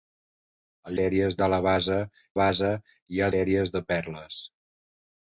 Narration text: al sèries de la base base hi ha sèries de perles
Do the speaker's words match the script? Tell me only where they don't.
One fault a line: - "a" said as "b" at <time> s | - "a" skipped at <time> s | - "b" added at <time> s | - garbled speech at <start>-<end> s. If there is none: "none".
none